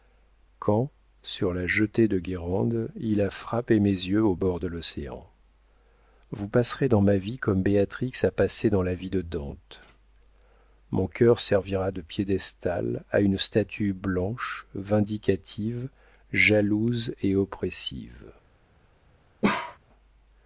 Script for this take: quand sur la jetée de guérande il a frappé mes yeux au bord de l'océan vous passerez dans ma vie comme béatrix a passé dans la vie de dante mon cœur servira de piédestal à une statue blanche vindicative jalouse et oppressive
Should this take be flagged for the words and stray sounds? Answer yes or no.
yes